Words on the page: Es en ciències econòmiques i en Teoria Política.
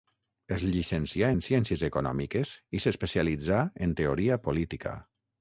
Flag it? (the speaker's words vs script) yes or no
yes